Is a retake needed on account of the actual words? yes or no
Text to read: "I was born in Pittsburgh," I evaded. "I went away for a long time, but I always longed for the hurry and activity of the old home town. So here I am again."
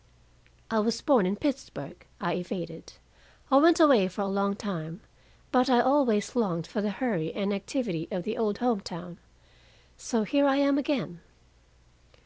no